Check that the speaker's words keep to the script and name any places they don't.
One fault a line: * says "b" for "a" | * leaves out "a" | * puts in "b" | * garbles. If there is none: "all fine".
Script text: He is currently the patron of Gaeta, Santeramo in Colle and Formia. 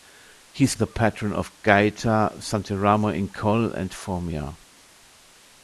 * leaves out "currently"